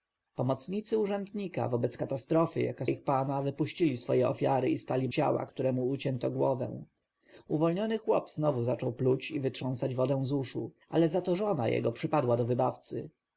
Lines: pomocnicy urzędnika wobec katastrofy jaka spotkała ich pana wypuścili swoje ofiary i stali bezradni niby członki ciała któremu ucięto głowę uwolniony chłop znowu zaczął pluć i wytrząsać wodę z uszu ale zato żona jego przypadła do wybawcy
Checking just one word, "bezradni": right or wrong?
wrong